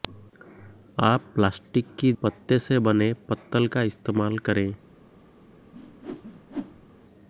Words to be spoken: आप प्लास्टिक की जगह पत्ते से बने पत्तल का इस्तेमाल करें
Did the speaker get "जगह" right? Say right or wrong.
wrong